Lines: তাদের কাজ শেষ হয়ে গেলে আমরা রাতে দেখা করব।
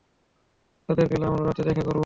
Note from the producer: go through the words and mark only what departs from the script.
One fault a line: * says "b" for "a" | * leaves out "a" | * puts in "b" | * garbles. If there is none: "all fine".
* leaves out "কাজ শেষ হয়ে"